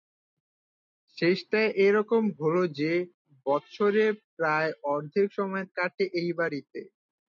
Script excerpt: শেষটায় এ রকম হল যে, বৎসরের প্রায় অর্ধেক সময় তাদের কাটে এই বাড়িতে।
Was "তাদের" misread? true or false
true